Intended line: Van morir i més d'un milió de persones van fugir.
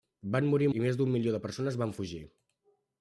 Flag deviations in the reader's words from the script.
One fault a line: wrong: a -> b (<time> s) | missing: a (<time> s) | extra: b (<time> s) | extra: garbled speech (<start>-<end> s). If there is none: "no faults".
no faults